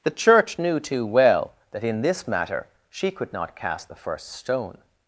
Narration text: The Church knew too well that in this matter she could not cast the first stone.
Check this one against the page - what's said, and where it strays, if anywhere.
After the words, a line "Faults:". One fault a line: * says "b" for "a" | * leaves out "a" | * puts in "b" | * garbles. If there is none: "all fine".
The Church knew too well that in this matter she could not cast the first stone.
Faults:
all fine